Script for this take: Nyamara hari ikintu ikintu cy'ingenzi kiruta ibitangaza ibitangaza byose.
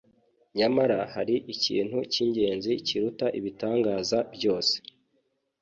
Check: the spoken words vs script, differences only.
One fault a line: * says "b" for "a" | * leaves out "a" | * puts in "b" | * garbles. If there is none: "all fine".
* leaves out "ikintu"
* leaves out "ibitangaza"